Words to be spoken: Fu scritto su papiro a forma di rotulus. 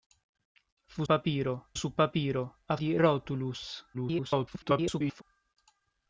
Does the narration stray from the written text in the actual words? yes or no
yes